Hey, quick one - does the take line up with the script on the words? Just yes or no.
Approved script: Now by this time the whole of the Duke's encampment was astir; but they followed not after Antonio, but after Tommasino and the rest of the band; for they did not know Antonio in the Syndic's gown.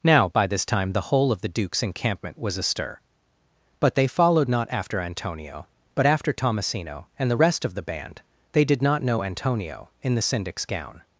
no